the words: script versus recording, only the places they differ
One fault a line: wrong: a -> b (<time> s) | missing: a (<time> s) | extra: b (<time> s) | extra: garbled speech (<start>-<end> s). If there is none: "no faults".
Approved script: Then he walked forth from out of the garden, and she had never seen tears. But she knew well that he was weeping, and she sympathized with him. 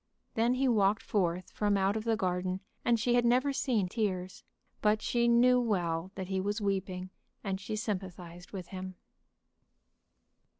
no faults